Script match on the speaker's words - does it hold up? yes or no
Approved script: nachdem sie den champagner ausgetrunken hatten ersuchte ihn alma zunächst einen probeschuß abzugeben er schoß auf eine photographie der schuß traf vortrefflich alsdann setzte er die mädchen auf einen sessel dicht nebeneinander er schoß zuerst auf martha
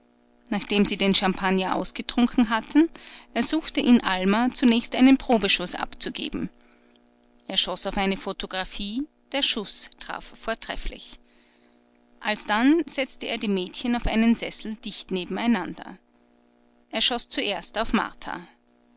yes